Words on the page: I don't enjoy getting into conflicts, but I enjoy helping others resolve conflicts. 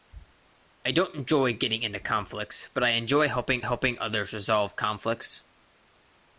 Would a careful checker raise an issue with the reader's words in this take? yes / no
yes